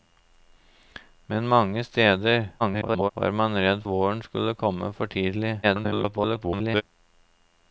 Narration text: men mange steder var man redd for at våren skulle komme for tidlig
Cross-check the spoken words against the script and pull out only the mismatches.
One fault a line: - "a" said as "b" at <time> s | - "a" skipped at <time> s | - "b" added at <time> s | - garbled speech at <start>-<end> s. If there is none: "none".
- garbled speech at 2.6-3.1 s
- "for at" skipped at 3.8 s
- garbled speech at 5.6-6.8 s